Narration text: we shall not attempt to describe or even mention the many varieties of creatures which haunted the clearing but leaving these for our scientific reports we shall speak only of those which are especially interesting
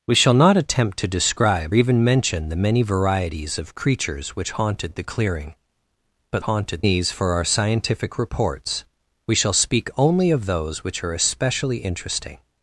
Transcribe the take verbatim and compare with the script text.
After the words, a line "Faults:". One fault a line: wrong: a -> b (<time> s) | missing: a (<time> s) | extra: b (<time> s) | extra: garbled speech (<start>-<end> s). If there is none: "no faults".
we shall not attempt to describe even mention the many varieties of creatures which haunted the clearing but haunted these for our scientific reports we shall speak only of those which are especially interesting
Faults:
missing: or (1.8 s)
wrong: leaving -> haunted (6.4 s)